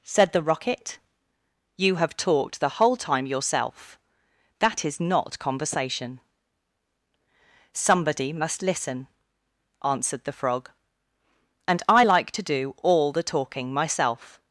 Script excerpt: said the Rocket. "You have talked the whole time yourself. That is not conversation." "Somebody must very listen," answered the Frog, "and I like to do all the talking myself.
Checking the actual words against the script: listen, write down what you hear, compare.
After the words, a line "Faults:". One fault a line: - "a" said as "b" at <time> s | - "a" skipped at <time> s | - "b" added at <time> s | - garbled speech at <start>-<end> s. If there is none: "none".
said the Rocket. "You have talked the whole time yourself. That is not conversation." "Somebody must listen," answered the Frog, "and I like to do all the talking myself.
Faults:
- "very" skipped at 8.6 s